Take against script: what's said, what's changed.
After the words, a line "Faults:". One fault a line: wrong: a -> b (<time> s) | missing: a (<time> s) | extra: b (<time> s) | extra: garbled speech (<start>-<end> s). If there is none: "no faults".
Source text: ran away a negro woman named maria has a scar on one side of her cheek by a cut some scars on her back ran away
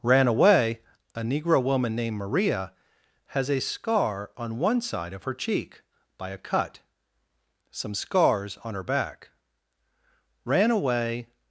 ran away a negro woman named maria has a scar on one side of her cheek by a cut some scars on her back ran away
Faults:
no faults